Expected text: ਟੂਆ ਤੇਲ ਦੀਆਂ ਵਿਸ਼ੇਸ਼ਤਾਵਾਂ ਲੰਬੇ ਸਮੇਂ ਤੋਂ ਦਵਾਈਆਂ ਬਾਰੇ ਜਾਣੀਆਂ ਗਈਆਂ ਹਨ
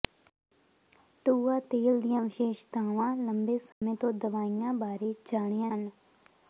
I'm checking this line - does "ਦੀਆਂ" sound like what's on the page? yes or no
yes